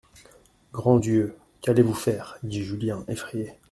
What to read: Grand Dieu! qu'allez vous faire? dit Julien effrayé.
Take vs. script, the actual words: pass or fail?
pass